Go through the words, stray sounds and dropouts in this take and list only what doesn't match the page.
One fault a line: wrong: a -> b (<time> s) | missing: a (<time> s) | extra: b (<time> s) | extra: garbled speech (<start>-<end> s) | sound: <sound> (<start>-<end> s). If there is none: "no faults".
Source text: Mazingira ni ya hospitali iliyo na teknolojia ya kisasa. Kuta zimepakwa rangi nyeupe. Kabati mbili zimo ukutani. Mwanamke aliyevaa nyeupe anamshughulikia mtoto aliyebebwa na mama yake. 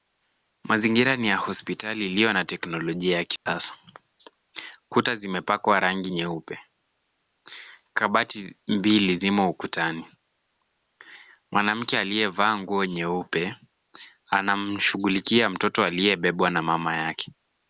sound: dropout (3.4-3.5 s)
extra: nguo (12.6 s)